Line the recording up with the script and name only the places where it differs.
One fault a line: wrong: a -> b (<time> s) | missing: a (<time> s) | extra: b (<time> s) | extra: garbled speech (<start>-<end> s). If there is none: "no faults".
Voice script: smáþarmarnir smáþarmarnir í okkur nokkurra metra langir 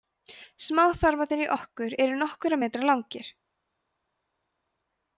missing: smáþarmarnir (1.4 s)
extra: eru (2.0 s)